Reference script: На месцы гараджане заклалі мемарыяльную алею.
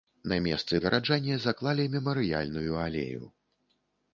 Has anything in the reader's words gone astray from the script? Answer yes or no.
no